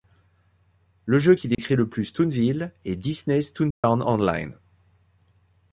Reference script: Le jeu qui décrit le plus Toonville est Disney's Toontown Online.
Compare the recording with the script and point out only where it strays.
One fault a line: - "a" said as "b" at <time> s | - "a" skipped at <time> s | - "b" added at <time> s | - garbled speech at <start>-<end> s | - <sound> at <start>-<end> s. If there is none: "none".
- dropout at 1.5-1.6 s
- dropout at 3.7-3.8 s